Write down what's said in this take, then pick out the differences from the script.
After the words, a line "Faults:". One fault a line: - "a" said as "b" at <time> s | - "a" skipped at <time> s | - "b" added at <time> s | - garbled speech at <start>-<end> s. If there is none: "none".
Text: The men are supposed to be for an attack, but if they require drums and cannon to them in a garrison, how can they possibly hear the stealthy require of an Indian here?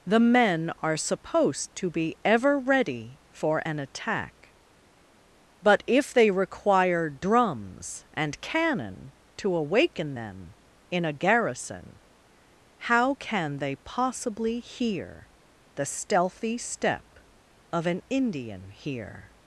The men are supposed to be ever ready for an attack, but if they require drums and cannon to awaken them in a garrison, how can they possibly hear the stealthy step of an Indian here?
Faults:
- "ever ready" added at 2.2 s
- "awaken" added at 9.5 s
- "require" said as "step" at 16.6 s